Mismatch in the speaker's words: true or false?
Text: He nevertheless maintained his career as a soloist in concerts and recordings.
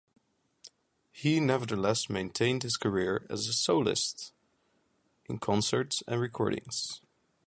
false